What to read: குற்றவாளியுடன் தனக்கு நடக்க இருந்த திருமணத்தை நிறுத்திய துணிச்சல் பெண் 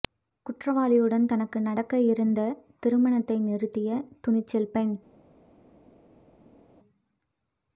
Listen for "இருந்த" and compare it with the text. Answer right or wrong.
right